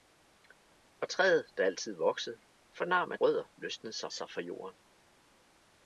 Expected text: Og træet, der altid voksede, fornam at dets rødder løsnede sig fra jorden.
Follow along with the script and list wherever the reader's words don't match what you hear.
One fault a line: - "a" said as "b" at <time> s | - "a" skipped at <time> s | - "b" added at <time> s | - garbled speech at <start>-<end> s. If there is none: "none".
- "dets" skipped at 3.2 s
- "sig" added at 4.1 s